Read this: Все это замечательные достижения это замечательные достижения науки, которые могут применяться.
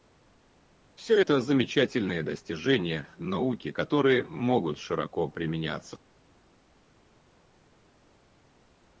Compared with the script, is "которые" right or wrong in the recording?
right